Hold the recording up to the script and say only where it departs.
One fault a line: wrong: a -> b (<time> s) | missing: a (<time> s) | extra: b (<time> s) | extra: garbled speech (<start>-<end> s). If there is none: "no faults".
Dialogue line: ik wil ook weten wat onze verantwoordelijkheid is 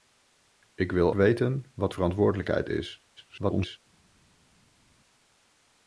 missing: ook (1.1 s)
missing: onze (1.9 s)
extra: garbled speech (3.2-3.8 s)